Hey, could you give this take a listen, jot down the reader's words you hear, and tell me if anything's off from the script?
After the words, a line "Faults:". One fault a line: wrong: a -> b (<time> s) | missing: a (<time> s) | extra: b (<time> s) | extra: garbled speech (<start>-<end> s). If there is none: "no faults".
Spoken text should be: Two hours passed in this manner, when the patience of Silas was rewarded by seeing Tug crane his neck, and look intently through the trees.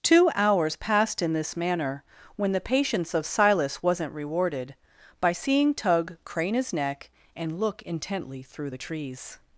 Two hours passed in this manner, when the patience of Silas wasn't rewarded by seeing Tug crane his neck, and look intently through the trees.
Faults:
wrong: was -> wasn't (3.8 s)